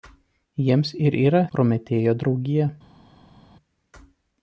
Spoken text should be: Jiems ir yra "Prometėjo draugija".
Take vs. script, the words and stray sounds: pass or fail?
pass